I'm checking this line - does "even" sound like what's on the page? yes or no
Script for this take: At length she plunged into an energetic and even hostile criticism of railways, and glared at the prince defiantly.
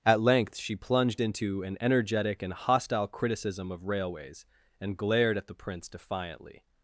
no